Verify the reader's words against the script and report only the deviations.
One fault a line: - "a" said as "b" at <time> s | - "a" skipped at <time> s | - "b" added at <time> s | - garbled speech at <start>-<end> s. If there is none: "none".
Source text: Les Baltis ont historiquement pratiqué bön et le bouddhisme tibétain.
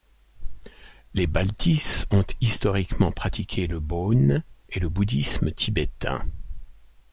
- "le" added at 3.7 s